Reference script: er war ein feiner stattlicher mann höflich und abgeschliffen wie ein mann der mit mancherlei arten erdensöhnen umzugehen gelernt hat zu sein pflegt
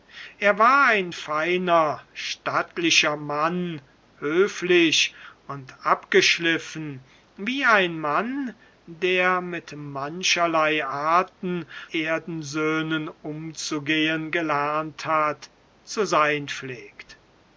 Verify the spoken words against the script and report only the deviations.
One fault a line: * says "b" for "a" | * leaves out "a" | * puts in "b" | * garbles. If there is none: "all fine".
all fine